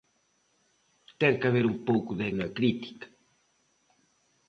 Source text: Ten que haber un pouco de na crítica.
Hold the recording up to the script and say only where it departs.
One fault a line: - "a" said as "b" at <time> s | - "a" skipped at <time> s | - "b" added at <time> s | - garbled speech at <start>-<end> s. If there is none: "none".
none